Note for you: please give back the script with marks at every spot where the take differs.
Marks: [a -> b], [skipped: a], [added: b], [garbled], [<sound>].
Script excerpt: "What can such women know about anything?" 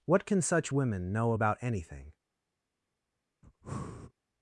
"What can such women know about anything?" [breath]